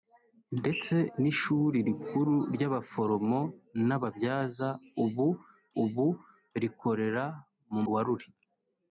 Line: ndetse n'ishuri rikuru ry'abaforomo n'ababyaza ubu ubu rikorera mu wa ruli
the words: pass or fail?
pass